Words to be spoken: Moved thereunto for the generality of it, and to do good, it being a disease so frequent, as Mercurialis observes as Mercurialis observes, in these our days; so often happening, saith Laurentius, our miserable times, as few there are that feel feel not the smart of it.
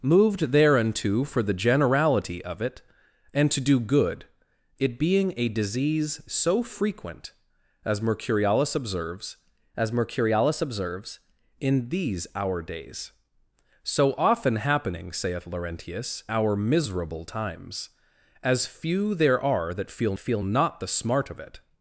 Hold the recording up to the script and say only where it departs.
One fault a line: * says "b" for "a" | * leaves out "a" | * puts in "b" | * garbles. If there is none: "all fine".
all fine